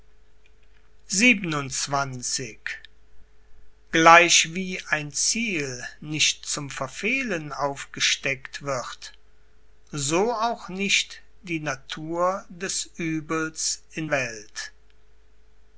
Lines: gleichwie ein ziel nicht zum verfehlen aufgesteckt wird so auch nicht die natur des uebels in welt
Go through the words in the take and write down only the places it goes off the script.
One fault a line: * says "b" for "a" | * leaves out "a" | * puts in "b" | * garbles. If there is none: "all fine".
all fine